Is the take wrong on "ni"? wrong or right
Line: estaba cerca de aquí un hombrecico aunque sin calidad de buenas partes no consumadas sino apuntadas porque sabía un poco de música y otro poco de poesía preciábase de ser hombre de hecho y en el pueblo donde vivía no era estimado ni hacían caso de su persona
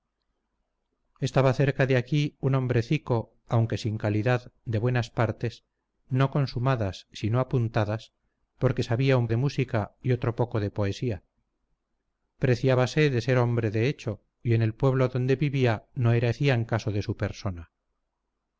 wrong